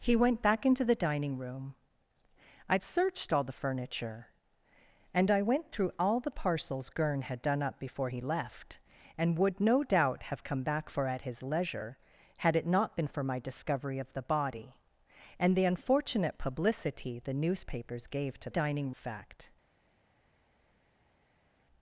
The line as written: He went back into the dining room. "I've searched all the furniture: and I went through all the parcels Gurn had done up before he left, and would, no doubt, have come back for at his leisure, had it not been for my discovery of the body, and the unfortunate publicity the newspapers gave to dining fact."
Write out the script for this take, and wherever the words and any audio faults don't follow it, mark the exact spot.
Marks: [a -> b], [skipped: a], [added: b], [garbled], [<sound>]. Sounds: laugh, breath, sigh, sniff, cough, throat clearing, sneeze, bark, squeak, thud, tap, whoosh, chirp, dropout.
He went back into the dining room. "I've searched all the furniture: and I went through all the parcels Gurn had done up before he left, and would, no doubt, have come back for at his leisure, had it not been for my discovery of the body, and the unfortunate publicity the newspapers gave to dining fact."